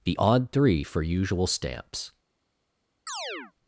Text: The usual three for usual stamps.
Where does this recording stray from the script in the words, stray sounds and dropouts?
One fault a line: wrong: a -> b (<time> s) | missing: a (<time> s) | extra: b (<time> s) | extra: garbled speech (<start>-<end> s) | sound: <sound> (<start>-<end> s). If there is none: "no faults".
wrong: usual -> odd (0.2 s)
sound: chirp (3.1-3.5 s)